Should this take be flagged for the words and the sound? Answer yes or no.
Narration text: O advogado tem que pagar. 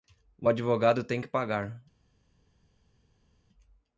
no